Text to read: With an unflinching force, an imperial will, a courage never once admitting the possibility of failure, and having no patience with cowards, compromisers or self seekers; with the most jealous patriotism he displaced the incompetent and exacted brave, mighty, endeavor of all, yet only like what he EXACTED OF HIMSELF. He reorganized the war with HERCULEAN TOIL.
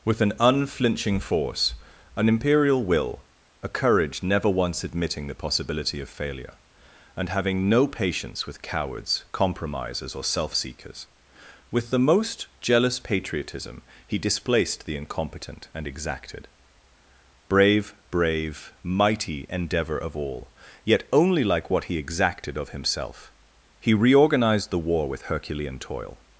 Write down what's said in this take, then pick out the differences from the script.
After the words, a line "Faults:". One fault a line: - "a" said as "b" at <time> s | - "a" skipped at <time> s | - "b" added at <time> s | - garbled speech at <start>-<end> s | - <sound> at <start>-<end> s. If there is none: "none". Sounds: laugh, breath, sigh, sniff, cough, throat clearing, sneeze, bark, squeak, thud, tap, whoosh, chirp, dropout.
With an unflinching force, an imperial will, a courage never once admitting the possibility of failure, and having no patience with cowards, compromisers or self seekers; with the most jealous patriotism he displaced the incompetent and exacted brave brave, mighty, endeavor of all, yet only like what he EXACTED OF HIMSELF. He reorganized the war with HERCULEAN TOIL.
Faults:
- "brave" added at 18.1 s